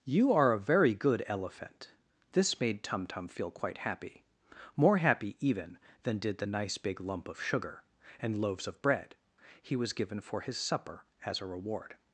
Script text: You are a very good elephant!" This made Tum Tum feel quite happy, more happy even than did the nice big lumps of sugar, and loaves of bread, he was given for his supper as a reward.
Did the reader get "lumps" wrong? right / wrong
wrong